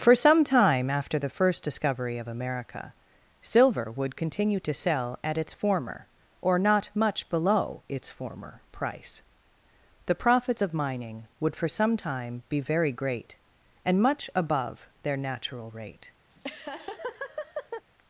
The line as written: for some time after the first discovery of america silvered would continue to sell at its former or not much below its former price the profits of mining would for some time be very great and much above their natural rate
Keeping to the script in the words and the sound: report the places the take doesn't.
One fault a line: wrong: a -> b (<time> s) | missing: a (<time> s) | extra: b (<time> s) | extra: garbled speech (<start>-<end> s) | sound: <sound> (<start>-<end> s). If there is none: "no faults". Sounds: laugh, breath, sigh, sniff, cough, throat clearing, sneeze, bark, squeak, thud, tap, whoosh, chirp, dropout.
wrong: silvered -> silver (3.4 s)
sound: laugh (16.3-17.8 s)